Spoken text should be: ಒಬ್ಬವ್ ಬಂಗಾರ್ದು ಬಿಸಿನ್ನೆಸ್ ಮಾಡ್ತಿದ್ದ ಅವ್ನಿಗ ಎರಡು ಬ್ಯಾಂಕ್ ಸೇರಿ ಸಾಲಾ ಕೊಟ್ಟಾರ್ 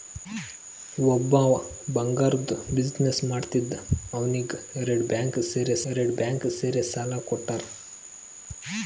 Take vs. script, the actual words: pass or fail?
fail